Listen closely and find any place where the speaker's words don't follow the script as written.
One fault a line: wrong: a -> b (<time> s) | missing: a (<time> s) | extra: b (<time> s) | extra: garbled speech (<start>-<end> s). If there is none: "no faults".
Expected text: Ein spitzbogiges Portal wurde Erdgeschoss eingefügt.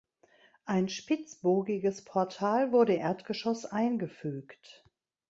no faults